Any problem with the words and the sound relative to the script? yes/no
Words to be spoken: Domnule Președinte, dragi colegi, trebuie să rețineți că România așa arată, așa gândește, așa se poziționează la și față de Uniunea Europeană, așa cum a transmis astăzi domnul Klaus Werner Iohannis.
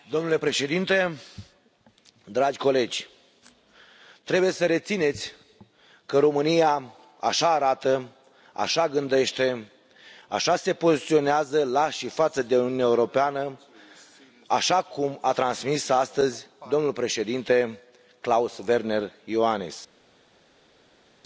yes